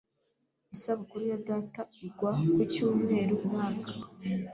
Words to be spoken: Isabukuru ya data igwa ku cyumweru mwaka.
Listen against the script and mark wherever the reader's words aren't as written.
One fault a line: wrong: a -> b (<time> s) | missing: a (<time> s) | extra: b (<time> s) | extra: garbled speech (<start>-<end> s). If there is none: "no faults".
no faults